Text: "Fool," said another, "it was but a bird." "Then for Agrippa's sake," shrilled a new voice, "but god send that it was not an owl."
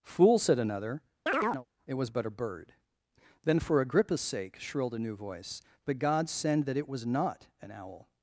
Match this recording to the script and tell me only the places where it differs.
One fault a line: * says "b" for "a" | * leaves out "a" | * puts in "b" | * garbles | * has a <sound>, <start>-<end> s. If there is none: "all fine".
* has a chirp, 1.3-1.7 s